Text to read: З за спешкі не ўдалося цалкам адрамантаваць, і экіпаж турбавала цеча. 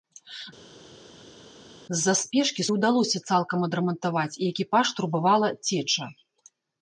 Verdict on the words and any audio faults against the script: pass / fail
pass